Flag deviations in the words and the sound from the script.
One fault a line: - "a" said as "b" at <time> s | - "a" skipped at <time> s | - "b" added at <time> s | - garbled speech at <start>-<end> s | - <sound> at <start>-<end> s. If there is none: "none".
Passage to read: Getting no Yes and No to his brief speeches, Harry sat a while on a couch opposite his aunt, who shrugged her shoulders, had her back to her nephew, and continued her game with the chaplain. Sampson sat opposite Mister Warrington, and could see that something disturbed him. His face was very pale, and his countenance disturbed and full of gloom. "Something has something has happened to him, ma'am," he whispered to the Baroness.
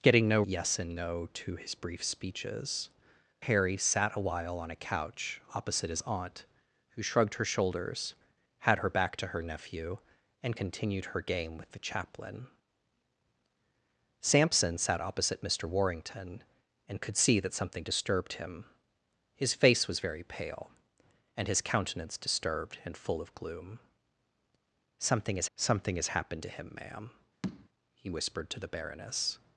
- tap at 27.4-27.7 s